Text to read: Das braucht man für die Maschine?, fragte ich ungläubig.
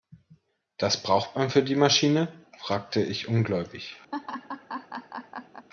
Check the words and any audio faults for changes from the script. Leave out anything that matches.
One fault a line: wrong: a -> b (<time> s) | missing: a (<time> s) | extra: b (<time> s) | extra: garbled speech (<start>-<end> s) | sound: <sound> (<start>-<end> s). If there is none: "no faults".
sound: laugh (4.1-5.7 s)